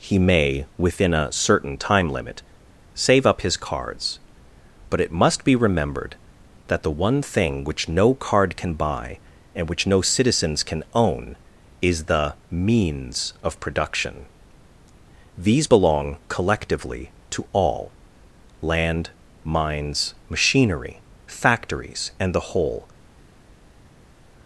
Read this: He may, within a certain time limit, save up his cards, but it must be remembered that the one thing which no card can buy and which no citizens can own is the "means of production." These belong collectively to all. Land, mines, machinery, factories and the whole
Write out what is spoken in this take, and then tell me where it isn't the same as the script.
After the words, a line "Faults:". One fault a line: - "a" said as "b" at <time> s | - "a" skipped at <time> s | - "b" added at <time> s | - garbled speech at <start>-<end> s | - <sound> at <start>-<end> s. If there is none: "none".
He may, within a certain time limit, save up his cards, but it must be remembered that the one thing which no card can buy and which no citizens can own is the "means of production." These belong collectively to all. Land, mines, machinery, factories and the whole
Faults:
none